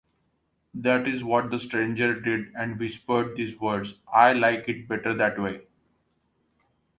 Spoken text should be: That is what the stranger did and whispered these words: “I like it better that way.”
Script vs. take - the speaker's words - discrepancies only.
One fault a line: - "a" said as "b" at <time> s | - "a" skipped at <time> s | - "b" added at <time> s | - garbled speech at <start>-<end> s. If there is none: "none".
none